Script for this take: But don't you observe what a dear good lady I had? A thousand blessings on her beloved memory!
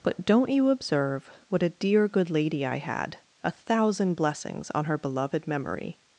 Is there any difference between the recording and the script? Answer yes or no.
no